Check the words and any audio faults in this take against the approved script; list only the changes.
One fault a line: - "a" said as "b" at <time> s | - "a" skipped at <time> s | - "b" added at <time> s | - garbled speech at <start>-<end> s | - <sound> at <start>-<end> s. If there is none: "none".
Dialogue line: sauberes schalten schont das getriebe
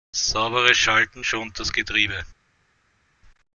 none